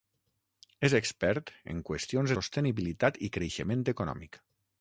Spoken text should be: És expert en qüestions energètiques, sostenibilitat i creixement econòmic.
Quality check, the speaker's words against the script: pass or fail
fail